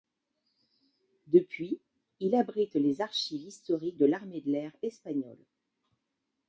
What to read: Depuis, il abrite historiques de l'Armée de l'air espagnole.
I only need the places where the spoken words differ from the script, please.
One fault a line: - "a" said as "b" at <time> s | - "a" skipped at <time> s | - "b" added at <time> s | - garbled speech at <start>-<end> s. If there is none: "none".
- "les archives" added at 2.7 s